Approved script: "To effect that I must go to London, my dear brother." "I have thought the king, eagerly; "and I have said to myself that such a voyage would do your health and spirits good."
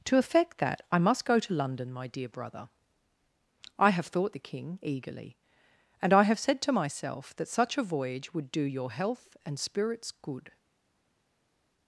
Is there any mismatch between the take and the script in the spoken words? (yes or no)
no